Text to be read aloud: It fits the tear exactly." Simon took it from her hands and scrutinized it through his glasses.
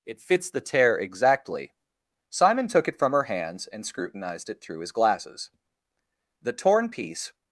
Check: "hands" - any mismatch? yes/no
no